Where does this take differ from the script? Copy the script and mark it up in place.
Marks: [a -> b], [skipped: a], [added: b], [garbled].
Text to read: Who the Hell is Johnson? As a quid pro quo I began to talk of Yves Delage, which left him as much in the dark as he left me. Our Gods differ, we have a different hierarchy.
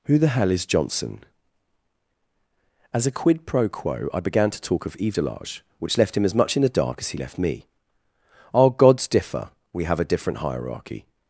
Who the Hell is Johnson? As a quid pro quo I began to talk of Yves Delage, which left him as much in the dark as he left me. Our Gods differ, we have a different hierarchy.